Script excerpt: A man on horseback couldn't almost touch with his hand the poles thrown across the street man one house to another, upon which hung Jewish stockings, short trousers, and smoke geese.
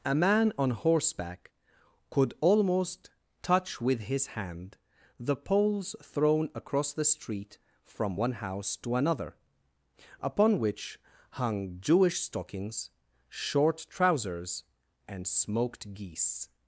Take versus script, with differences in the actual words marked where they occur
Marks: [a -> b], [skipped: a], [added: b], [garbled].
A man on horseback [couldn't -> could] almost touch with his hand the poles thrown across the street [man -> from] one house to another, upon which hung Jewish stockings, short trousers, and [smoke -> smoked] geese.